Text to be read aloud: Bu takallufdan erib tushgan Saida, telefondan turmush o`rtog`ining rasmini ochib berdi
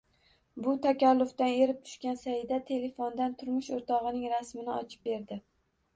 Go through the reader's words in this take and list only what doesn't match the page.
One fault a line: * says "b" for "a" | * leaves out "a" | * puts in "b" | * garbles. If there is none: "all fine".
all fine